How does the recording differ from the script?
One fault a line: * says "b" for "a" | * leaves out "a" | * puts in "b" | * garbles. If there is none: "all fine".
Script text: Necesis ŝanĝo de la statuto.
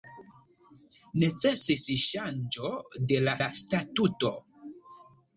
* puts in "la"